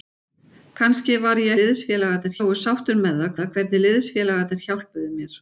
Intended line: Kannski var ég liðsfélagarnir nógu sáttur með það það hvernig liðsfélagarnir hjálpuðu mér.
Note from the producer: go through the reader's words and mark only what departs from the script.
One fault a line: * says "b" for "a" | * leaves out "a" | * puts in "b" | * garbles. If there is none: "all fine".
all fine